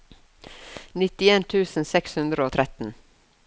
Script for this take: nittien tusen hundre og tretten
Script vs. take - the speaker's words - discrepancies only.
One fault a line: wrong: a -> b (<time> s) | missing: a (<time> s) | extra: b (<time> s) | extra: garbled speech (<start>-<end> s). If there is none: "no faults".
extra: seks (1.9 s)